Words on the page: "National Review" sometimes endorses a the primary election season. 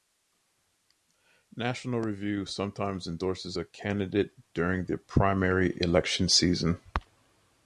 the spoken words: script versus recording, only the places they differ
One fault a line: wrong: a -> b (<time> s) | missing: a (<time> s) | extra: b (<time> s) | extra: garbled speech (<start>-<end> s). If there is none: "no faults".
extra: candidate during (3.6 s)